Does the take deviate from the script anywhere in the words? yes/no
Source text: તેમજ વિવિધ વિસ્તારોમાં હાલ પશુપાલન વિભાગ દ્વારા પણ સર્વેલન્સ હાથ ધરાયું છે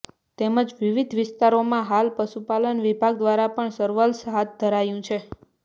no